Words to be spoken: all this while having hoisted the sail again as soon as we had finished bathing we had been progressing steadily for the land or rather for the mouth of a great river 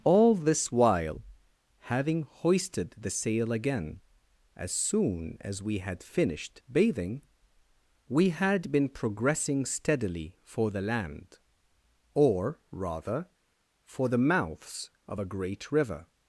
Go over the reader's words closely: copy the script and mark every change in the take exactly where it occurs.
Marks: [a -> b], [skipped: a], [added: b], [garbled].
all this while having hoisted the sail again as soon as we had finished bathing we had been progressing steadily for the land or rather for the [mouth -> mouths] of a great river